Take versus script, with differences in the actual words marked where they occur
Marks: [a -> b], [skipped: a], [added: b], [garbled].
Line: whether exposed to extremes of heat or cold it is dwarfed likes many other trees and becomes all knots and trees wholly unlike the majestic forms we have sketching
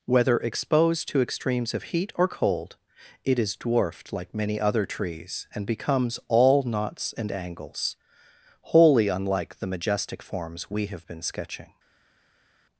whether exposed to extremes of heat or cold it is dwarfed [likes -> like] many other trees and becomes all knots and [trees -> angles] wholly unlike the majestic forms we have [added: been] sketching